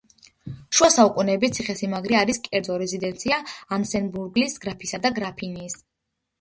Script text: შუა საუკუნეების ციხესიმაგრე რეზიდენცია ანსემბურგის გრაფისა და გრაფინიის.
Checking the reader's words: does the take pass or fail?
fail